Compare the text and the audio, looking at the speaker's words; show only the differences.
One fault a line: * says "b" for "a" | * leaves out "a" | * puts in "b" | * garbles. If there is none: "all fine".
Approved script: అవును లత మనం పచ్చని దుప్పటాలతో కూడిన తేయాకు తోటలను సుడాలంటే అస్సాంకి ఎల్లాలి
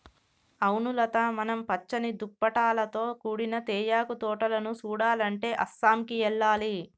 all fine